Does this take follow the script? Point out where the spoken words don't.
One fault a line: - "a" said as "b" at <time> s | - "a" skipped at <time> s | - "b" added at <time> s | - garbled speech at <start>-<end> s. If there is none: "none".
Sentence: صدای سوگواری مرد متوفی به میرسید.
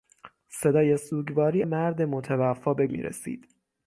none